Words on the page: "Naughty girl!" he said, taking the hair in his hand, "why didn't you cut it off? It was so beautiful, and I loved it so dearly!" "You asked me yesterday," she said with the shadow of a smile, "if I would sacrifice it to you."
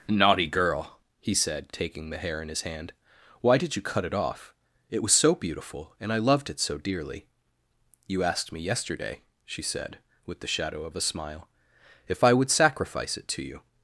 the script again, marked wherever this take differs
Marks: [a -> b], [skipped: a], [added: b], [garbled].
"Naughty girl!" he said, taking the hair in his hand, "why [didn't -> did] you cut it off? It was so beautiful, and I loved it so dearly!" "You asked me yesterday," she said with the shadow of a smile, "if I would sacrifice it to you."